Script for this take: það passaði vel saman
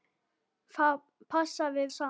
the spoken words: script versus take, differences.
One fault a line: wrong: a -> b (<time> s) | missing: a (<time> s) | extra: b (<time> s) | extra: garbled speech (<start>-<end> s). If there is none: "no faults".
missing: vel (1.9 s)